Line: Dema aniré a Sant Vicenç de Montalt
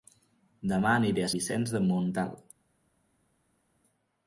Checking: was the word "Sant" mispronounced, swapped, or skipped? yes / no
yes